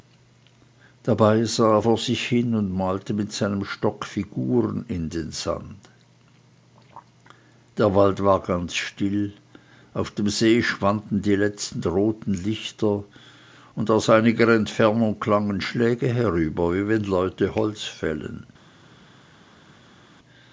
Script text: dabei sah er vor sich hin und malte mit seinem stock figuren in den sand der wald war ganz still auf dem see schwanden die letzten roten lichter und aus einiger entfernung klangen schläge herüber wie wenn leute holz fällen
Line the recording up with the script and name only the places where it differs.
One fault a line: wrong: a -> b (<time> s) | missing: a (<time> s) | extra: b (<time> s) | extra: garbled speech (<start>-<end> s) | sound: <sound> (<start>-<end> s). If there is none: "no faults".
no faults